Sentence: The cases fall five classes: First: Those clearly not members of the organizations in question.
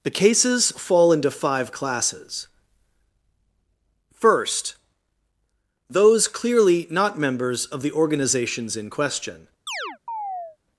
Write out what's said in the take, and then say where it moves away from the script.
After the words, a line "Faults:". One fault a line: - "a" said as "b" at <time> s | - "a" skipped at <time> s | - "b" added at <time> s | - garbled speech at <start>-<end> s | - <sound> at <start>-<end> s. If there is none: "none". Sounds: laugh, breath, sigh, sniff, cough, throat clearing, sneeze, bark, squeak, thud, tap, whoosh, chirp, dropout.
The cases fall into five classes: First: Those clearly not members of the organizations in question.
Faults:
- "into" added at 1.1 s
- chirp at 9.7-10.6 s